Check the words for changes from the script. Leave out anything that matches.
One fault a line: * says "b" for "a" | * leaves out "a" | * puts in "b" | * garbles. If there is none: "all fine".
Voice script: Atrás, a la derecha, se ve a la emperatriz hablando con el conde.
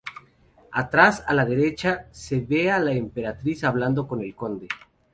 all fine